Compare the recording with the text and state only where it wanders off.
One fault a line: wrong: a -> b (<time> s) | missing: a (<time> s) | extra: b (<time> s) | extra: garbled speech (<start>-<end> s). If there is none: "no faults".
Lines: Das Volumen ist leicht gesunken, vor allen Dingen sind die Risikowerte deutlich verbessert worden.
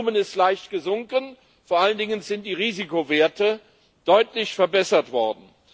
no faults